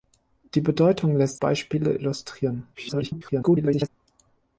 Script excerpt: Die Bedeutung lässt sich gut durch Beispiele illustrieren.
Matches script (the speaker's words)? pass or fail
fail